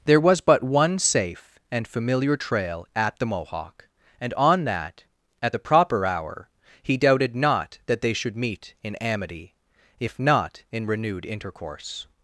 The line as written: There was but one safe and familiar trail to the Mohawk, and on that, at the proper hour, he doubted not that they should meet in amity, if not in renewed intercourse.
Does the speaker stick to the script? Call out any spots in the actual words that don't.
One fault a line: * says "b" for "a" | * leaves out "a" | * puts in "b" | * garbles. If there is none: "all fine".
* says "at" for "to"